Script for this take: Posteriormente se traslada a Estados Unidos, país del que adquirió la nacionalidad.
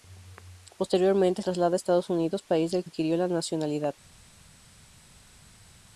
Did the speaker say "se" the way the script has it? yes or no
no